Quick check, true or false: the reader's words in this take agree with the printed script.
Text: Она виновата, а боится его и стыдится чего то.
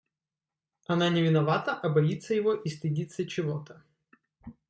false